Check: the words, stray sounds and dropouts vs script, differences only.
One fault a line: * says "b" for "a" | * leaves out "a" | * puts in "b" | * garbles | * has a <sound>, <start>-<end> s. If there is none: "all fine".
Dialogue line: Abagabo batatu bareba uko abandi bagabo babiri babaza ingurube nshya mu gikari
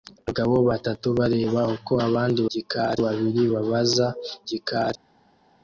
* says "gikari" for "bagabo"
* leaves out "ingurube nshya mu"